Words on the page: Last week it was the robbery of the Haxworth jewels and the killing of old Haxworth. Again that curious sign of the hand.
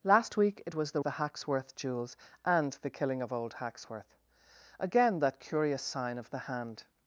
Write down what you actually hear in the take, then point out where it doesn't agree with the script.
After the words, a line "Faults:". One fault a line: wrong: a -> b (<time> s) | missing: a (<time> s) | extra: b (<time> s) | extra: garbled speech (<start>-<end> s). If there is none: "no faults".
Last week it was the the Haxworth jewels and the killing of old Haxworth. Again that curious sign of the hand.
Faults:
missing: robbery of (1.0 s)